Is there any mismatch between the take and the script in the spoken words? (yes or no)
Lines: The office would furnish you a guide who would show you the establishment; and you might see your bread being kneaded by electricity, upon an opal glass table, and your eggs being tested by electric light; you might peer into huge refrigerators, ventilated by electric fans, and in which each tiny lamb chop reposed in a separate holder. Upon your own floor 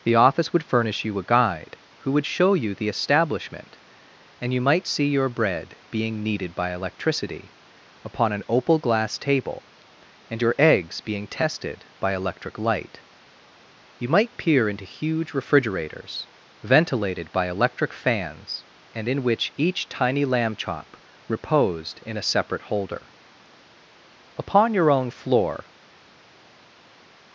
no